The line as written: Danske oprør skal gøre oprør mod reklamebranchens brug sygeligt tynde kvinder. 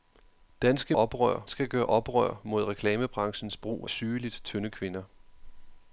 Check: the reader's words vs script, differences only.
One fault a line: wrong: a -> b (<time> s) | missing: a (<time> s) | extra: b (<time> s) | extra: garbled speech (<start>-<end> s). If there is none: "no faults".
no faults